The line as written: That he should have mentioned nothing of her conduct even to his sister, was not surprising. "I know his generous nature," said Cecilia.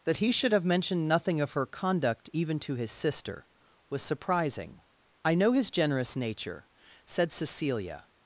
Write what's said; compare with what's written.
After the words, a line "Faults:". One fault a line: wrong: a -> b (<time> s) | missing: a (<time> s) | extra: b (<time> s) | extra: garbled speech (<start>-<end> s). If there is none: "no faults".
That he should have mentioned nothing of her conduct even to his sister, was surprising. "I know his generous nature," said Cecilia.
Faults:
missing: not (4.0 s)